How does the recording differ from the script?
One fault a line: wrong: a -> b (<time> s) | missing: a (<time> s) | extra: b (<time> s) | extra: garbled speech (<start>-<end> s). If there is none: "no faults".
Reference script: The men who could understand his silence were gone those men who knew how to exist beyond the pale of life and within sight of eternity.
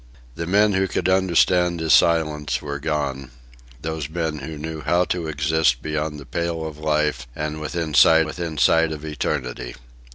extra: within sight (8.3 s)